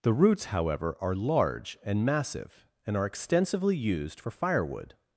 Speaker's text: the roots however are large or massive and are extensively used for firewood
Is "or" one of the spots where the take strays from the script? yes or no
yes